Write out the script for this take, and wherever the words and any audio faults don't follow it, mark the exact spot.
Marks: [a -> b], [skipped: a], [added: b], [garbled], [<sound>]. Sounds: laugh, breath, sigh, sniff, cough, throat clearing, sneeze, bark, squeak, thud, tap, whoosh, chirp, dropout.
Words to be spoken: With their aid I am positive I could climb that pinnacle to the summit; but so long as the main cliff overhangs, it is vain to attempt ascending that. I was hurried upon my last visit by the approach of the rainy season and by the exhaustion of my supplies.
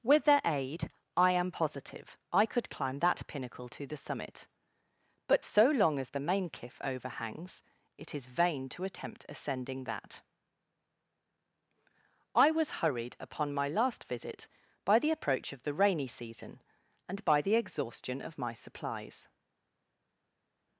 With their aid I am positive I could climb that pinnacle to the summit; but so long as the main cliff overhangs, it is vain to attempt ascending that. I was hurried upon my last visit by the approach of the rainy season and by the exhaustion of my supplies.